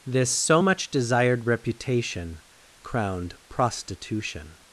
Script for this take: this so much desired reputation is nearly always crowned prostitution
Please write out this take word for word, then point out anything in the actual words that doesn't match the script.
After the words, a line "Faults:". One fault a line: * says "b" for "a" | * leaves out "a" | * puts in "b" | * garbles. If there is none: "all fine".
this so much desired reputation crowned prostitution
Faults:
* leaves out "is nearly always"